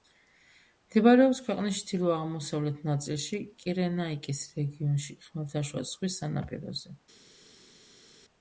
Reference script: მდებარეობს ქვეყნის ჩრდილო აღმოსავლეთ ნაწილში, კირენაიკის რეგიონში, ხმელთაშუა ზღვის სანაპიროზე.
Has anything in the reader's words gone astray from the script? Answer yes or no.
no